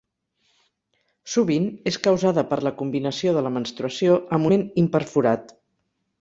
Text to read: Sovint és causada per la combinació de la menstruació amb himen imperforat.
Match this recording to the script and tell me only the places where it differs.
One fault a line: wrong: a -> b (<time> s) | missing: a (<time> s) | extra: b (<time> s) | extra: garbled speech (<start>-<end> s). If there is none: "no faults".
no faults